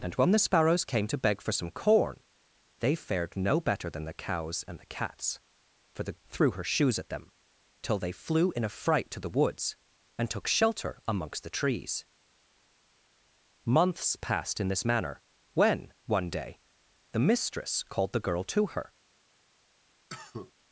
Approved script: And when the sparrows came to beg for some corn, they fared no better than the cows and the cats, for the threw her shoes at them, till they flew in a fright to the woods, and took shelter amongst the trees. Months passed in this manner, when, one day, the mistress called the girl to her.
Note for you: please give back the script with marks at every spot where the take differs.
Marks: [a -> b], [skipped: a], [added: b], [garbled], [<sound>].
And when the sparrows came to beg for some corn, they fared no better than the cows and the cats, for the threw her shoes at them, till they flew in a fright to the woods, and took shelter amongst the trees. Months passed in this manner, when, one day, the mistress called the girl to her. [cough]